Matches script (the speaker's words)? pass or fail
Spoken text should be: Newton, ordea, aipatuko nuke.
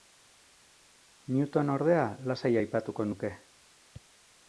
fail